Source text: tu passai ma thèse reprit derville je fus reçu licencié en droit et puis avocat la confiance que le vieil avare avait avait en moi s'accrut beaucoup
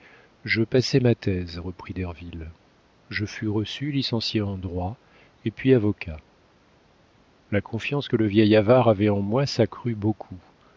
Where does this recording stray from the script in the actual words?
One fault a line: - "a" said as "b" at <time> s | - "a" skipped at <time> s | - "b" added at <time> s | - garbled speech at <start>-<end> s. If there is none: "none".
- "tu" said as "je" at 0.4 s
- "avait" skipped at 9.1 s